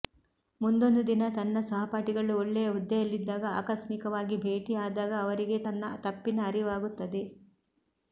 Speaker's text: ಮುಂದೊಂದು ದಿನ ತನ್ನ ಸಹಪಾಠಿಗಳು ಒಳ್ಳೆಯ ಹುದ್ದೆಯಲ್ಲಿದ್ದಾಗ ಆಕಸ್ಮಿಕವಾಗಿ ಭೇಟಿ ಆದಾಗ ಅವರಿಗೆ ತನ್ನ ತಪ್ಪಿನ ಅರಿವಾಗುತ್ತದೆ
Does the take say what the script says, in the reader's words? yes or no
yes